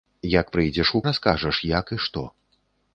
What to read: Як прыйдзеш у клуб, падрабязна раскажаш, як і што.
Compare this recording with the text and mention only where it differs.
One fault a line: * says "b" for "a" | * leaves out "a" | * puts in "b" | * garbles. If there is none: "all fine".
* leaves out "клуб падрабязна"